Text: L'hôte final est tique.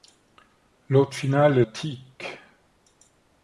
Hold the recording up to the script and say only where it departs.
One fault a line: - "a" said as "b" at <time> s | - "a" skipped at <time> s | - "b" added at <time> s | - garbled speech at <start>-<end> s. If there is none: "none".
none